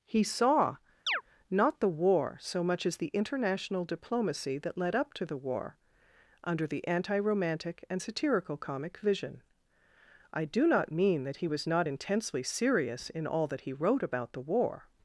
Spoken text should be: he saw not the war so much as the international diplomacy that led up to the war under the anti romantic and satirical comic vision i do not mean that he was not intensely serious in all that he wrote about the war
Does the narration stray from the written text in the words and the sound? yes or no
yes